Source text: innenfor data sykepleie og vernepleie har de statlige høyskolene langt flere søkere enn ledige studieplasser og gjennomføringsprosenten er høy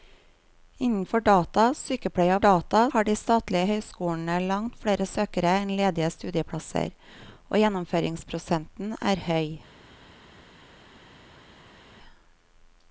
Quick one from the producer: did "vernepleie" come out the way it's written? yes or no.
no